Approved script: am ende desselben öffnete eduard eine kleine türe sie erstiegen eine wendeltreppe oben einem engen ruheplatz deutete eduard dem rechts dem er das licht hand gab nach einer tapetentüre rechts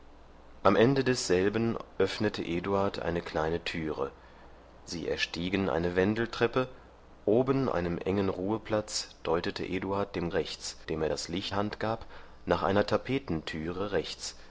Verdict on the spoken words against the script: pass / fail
pass